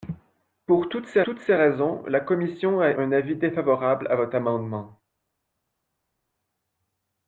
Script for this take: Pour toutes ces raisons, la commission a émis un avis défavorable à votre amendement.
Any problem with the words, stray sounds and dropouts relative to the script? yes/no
yes